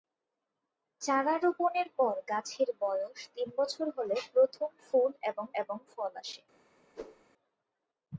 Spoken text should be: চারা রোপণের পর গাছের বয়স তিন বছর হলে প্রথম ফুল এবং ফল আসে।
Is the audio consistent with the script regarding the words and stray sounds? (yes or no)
no